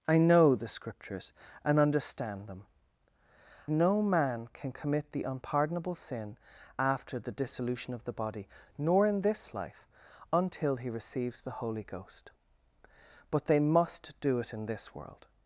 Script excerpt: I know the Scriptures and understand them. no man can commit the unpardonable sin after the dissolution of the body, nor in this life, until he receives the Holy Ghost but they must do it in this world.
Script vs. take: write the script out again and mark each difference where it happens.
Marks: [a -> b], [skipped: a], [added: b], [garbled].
I know the Scriptures and understand them. no man can commit the unpardonable sin after the dissolution of the body, nor in this life, until he receives the Holy Ghost but they must do it in this world.